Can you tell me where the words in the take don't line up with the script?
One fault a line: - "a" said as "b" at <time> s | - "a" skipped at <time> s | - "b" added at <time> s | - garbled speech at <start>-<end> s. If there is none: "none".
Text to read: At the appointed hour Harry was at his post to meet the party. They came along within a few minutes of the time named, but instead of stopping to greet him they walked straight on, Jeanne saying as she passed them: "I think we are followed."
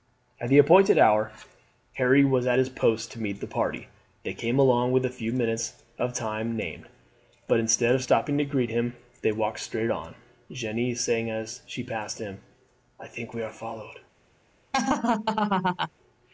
- "them" said as "him" at 12.2 s